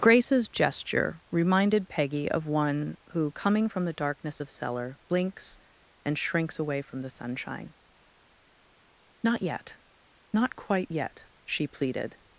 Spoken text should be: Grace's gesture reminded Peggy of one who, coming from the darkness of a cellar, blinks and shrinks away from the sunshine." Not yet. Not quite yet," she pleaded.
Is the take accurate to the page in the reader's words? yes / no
no